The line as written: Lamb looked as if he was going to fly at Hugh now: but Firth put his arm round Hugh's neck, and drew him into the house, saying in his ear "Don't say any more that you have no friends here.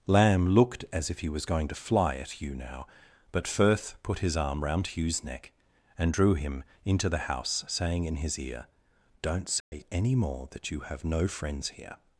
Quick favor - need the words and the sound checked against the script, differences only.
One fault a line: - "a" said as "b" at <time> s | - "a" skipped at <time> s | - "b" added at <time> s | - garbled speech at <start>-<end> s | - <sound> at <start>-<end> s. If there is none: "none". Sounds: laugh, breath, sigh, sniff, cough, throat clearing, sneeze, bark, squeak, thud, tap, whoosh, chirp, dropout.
- dropout at 9.6-9.7 s